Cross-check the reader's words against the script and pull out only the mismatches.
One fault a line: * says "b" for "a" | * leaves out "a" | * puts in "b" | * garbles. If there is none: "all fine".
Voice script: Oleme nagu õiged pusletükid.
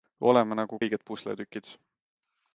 all fine